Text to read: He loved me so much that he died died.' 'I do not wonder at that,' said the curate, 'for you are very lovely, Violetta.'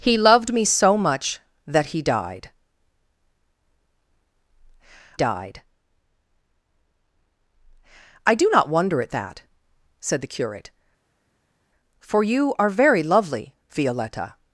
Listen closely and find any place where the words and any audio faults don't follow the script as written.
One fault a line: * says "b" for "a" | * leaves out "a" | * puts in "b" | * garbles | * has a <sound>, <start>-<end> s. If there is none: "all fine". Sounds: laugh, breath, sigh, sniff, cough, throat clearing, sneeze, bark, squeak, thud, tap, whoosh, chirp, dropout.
all fine